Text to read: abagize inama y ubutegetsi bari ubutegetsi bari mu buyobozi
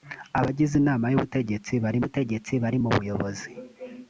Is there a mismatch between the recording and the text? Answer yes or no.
no